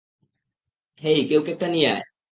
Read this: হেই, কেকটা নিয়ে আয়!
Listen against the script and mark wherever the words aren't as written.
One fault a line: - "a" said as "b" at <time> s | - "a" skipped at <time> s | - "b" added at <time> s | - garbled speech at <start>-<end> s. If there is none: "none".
- "কেউ" added at 1.3 s